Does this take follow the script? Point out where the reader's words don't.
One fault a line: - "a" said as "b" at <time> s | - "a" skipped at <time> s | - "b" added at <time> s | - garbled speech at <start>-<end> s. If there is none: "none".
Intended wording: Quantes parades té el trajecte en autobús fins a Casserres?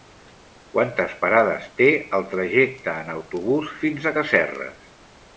none